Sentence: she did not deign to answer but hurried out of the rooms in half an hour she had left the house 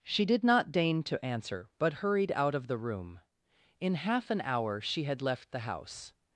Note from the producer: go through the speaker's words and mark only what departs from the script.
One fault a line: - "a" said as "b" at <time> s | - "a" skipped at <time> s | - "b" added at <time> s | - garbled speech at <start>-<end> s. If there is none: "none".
- "rooms" said as "room" at 2.8 s